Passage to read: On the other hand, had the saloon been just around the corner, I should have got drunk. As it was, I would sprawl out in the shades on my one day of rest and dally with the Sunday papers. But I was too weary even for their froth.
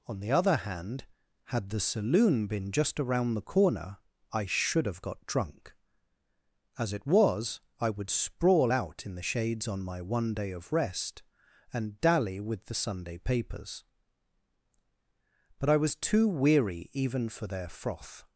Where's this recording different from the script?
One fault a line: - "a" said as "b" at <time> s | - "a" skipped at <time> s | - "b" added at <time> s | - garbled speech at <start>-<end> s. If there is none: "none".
none